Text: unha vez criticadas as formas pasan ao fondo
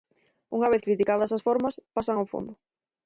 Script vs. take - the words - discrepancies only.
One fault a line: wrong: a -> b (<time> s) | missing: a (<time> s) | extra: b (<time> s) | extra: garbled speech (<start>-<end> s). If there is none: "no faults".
no faults